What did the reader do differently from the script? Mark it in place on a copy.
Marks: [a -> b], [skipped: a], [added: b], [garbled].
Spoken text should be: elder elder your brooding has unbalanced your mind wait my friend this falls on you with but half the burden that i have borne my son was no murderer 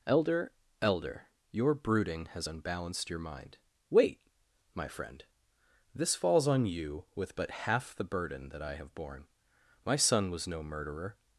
elder elder your brooding has unbalanced your mind wait my friend this falls on you with but half the burden that i have borne my son was no murderer